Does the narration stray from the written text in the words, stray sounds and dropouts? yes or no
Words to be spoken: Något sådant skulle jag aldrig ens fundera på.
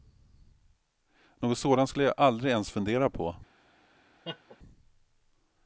yes